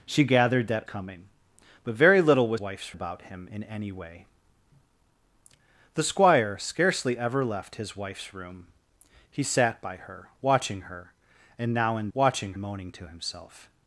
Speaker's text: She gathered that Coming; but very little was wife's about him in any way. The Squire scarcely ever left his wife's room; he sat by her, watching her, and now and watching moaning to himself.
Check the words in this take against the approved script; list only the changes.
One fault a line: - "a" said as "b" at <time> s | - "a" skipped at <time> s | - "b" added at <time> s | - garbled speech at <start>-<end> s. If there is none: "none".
none